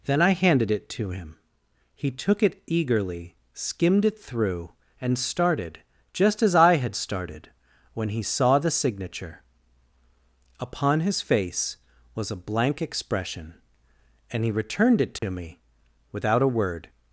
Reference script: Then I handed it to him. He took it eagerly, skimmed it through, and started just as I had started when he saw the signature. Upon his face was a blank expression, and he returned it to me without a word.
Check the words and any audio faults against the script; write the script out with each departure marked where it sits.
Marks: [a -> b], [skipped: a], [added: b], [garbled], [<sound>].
Then I handed it to him. He took it eagerly, skimmed it through, and started just as I had started when he saw the signature. Upon his face was a blank expression, and he returned it to [dropout] me without a word.